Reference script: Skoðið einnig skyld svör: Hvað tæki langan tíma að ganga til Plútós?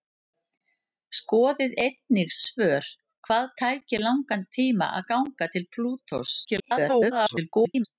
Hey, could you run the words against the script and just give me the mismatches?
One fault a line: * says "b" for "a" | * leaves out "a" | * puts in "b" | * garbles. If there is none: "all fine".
* leaves out "skyld"
* garbles